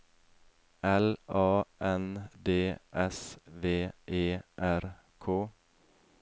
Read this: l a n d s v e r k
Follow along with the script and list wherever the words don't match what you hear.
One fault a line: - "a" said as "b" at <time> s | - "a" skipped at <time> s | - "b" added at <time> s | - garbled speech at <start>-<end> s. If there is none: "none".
none